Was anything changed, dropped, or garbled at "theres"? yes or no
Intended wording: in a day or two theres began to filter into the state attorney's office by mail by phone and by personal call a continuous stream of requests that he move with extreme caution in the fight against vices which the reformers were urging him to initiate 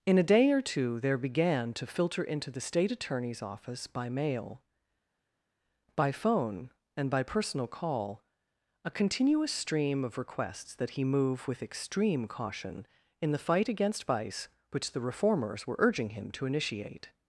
yes